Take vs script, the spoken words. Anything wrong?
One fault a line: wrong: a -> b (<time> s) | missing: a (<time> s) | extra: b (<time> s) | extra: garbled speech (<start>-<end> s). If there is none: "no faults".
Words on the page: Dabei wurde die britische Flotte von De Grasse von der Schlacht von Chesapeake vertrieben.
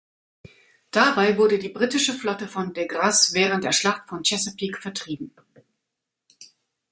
wrong: von -> während (3.4 s)